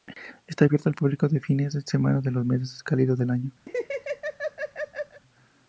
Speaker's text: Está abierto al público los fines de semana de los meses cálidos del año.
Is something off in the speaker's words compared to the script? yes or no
no